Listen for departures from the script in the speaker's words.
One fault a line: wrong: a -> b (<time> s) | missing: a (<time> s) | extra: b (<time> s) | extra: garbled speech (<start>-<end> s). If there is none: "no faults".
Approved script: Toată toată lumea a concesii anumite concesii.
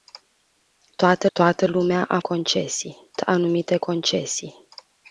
no faults